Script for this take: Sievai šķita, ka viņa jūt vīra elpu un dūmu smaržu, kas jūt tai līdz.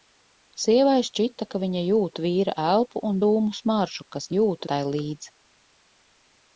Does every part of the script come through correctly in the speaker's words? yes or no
yes